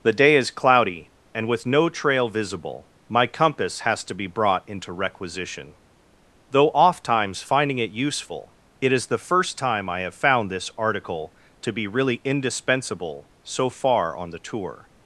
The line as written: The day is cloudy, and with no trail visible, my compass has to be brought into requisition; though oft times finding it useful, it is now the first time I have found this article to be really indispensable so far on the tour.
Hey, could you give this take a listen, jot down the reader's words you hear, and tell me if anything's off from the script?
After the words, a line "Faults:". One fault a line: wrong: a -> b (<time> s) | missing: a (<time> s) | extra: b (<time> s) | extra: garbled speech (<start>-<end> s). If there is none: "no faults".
The day is cloudy, and with no trail visible, my compass has to be brought into requisition; though oft times finding it useful, it is the first time I have found this article to be really indispensable so far on the tour.
Faults:
missing: now (9.1 s)